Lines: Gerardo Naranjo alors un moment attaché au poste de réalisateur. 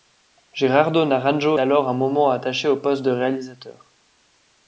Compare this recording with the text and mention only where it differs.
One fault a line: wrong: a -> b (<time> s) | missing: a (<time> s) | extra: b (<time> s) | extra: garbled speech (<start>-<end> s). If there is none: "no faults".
no faults